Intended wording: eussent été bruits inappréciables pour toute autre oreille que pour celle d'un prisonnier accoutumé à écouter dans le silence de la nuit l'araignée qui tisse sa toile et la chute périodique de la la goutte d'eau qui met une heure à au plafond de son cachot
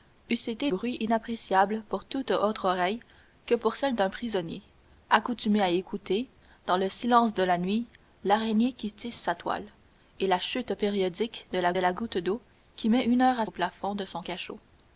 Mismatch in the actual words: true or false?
false